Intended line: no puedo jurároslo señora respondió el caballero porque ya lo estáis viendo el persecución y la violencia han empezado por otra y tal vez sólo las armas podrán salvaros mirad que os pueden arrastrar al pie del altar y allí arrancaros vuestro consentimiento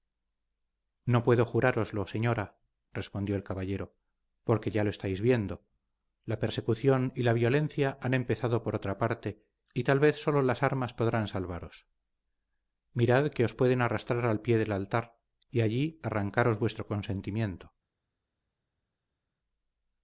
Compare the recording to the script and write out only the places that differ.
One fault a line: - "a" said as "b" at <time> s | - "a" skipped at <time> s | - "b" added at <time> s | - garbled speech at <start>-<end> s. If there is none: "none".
- "el" said as "la" at 6.2 s
- "parte" added at 9.0 s